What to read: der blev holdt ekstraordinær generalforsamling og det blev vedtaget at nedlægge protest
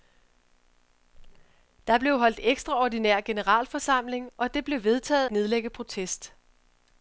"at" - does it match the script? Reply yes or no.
no